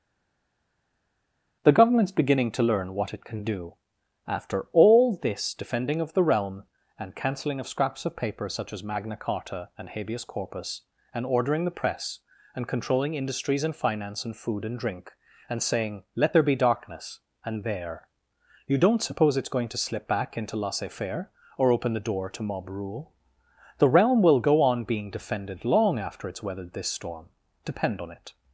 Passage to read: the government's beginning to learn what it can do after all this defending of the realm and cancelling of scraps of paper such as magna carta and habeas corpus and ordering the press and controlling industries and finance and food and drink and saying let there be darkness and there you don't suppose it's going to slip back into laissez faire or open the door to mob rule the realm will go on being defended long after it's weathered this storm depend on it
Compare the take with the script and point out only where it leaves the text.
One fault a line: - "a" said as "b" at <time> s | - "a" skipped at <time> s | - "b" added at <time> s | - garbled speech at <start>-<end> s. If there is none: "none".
none